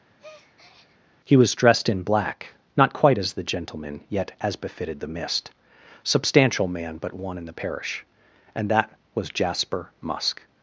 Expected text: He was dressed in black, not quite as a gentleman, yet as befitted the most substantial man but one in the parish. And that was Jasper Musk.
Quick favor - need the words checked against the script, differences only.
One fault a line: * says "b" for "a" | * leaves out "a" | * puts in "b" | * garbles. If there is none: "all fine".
* says "the" for "a"
* says "mist" for "most"